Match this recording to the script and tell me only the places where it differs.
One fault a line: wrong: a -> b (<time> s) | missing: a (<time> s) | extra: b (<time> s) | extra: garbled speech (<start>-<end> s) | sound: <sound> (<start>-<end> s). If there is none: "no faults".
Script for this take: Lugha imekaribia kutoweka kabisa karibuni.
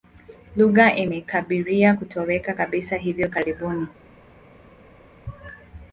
extra: hivi (3.0 s)